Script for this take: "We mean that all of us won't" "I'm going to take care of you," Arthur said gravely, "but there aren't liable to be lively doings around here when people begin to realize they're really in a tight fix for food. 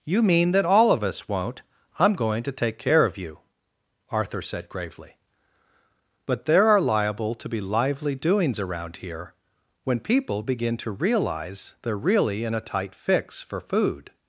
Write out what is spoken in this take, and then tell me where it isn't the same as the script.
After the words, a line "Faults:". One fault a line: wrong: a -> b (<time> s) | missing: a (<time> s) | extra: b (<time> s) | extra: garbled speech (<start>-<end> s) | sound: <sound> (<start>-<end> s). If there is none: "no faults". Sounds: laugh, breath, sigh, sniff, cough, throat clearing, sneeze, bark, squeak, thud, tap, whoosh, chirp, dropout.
"You mean that all of us won't" "I'm going to take care of you," Arthur said gravely, "but there are liable to be lively doings around here when people begin to realize they're really in a tight fix for food.
Faults:
wrong: We -> You (0.0 s)
wrong: aren't -> are (6.7 s)